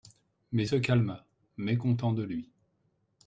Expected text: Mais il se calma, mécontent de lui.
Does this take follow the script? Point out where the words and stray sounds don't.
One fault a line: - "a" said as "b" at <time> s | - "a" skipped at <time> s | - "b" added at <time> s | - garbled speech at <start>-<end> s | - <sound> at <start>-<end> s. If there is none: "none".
- "il" skipped at 0.7 s